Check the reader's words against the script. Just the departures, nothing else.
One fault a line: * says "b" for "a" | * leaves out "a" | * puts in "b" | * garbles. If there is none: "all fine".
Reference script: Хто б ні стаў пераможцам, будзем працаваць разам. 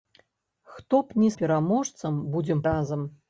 * leaves out "стаў"
* leaves out "працаваць"